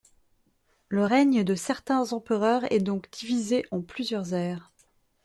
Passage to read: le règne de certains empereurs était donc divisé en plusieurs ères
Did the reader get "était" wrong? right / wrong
wrong